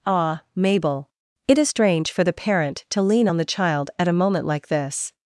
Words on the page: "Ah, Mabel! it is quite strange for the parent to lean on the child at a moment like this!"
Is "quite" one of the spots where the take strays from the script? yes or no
yes